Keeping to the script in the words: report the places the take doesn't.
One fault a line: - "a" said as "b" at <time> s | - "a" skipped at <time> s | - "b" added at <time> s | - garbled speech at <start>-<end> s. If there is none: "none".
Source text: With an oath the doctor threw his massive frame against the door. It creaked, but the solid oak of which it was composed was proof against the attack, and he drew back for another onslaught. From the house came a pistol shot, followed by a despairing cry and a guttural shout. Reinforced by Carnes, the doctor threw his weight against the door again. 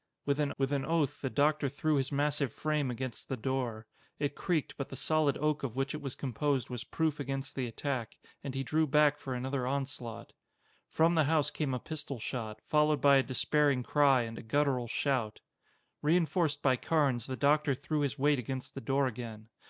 - "with an" added at 0.6 s